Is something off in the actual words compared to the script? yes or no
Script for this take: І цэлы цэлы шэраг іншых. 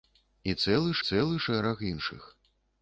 no